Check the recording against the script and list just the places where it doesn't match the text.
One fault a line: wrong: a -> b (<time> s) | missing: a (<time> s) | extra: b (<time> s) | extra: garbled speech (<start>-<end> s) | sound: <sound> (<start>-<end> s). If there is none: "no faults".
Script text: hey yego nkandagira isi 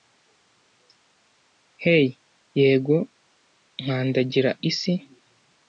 no faults